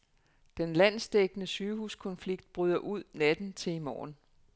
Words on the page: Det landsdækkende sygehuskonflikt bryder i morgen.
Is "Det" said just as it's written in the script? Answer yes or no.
no